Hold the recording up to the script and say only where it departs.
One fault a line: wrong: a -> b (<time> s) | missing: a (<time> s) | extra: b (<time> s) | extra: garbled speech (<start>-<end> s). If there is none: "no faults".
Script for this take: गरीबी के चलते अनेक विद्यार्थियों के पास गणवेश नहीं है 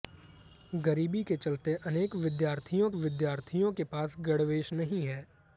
extra: विद्यार्थियों (2.9 s)